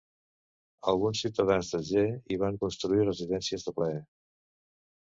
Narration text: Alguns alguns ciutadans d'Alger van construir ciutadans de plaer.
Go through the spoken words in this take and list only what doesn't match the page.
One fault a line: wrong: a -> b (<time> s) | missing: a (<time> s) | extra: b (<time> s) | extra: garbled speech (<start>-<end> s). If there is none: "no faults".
missing: alguns (1.2 s)
extra: hi (2.1 s)
wrong: ciutadans -> residències (3.1 s)